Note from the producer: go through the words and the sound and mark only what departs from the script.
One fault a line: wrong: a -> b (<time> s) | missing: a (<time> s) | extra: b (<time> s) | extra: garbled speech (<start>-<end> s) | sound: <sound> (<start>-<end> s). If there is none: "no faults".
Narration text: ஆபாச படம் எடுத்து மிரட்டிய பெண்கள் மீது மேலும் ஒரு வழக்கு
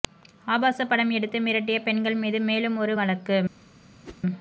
sound: whoosh (4.0-4.2 s)